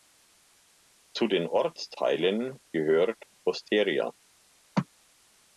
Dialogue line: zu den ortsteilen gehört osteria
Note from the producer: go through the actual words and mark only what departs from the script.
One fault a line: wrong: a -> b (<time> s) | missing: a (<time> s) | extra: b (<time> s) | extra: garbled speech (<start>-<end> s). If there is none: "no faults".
no faults